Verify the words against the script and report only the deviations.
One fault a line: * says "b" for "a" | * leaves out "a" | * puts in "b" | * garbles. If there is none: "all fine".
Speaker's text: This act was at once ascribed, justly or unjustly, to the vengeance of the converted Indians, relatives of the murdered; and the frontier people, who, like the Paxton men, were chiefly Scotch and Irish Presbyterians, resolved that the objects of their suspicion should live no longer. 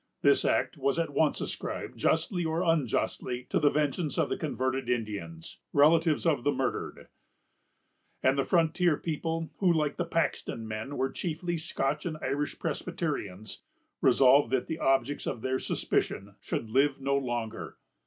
all fine